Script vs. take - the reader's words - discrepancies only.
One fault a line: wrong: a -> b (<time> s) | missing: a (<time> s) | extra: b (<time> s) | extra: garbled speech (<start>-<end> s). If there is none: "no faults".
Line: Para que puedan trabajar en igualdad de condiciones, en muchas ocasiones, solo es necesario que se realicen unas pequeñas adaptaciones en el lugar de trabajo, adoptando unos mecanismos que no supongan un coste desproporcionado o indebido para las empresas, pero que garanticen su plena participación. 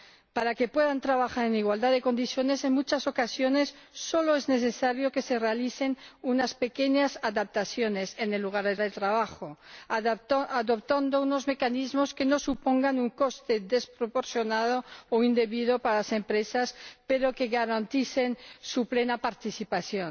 extra: de (8.8 s)